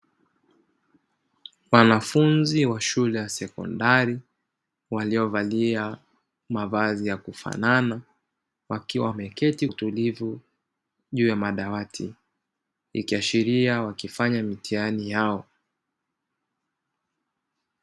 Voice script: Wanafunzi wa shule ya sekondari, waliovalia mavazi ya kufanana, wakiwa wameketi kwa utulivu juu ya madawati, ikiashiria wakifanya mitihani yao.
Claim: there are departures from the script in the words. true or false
true